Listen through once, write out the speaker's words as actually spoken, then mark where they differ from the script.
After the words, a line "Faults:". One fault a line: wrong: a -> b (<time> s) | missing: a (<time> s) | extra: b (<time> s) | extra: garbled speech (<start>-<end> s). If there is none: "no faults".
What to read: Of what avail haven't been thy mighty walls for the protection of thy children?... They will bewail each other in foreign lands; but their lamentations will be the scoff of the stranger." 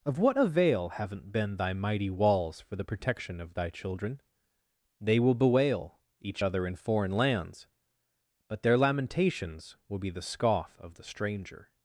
Of what avail haven't been thy mighty walls for the protection of thy children?... They will bewail each other in foreign lands; but their lamentations will be the scoff of the stranger."
Faults:
no faults